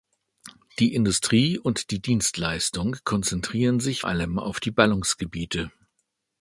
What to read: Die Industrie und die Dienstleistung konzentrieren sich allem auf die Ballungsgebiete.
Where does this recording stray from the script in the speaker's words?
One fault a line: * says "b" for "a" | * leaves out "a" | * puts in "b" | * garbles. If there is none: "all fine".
all fine